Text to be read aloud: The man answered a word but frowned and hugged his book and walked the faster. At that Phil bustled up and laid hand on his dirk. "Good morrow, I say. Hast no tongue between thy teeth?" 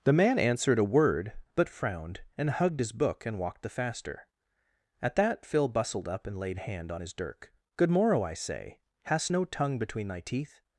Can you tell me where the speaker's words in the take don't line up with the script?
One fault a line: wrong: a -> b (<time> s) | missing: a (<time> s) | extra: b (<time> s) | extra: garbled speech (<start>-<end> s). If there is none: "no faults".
no faults